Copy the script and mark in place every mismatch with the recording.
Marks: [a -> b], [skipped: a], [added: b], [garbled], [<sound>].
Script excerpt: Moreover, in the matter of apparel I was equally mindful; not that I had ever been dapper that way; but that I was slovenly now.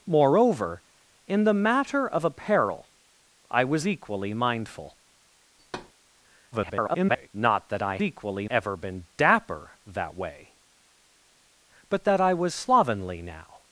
Moreover, in the matter of apparel I was equally mindful; [thud] [garbled] not that I [had -> equally] ever been dapper that way; but that I was slovenly now.